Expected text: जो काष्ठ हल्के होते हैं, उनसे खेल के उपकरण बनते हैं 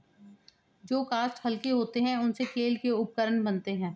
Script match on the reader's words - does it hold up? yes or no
yes